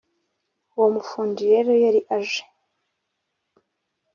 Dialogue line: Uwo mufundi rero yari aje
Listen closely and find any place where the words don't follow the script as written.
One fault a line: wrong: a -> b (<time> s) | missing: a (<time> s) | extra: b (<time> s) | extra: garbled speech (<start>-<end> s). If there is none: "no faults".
no faults